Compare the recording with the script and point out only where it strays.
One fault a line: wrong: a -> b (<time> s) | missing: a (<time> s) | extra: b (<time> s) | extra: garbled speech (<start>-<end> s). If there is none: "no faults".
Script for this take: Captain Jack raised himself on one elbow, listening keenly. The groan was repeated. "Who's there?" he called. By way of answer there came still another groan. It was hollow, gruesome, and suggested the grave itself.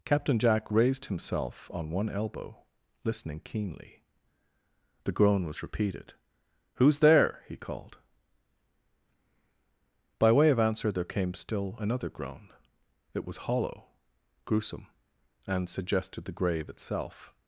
no faults